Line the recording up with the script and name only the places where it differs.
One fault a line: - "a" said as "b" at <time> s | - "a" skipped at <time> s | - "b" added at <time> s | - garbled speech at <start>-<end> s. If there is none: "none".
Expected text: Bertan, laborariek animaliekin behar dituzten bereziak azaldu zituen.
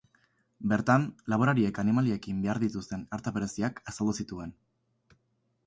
- "arta" added at 3.2 s